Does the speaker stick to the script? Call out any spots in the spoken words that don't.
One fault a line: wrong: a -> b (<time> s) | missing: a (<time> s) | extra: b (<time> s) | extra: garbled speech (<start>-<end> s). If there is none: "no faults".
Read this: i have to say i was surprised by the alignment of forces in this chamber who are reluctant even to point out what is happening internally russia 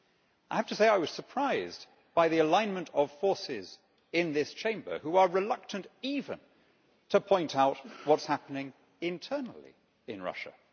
extra: in (10.1 s)